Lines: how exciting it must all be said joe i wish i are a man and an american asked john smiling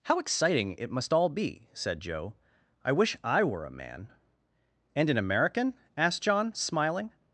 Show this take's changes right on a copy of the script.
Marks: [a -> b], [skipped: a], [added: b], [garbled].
how exciting it must all be said joe i wish i [are -> were] a man and an american asked john smiling